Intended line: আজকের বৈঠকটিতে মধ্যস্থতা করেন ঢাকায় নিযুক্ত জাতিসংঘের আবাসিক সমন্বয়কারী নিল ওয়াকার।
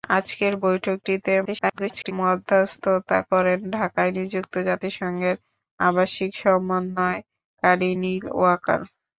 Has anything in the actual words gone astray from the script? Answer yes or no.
yes